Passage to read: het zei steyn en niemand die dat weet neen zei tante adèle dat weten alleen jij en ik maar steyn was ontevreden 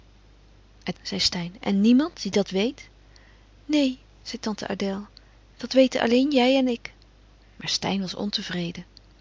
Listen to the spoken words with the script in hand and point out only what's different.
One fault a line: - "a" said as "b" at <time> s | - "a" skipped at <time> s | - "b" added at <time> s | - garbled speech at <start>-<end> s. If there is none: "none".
none